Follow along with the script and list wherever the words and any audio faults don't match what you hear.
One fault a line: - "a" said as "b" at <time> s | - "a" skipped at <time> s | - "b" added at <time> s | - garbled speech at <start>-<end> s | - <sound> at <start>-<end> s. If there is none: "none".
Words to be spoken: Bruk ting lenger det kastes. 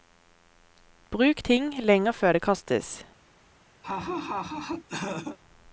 - "før" added at 2.1 s
- laugh at 3.8-5.4 s